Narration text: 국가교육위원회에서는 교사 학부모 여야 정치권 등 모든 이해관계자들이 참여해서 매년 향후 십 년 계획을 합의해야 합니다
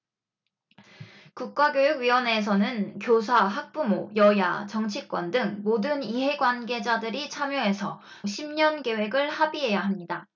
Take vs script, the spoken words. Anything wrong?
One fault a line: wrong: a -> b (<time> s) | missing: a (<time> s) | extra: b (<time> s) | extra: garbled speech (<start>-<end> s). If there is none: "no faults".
missing: 매년 향후 (8.0 s)